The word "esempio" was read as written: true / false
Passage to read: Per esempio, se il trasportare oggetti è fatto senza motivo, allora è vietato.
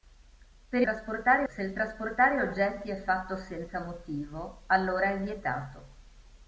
false